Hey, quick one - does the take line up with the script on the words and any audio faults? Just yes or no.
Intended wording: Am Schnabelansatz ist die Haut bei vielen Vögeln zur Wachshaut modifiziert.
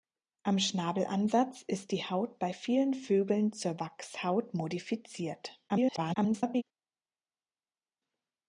no